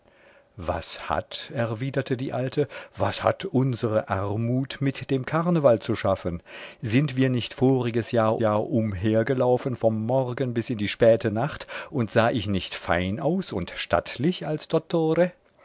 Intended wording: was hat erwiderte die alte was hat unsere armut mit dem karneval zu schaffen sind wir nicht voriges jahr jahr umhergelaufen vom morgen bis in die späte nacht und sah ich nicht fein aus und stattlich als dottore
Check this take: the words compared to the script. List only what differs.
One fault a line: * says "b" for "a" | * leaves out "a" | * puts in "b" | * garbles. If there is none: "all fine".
all fine